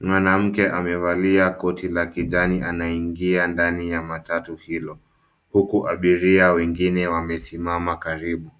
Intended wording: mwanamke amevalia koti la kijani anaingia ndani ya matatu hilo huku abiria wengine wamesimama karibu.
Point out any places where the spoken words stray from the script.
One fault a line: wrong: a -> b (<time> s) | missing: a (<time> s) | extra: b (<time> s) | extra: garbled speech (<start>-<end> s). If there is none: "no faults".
no faults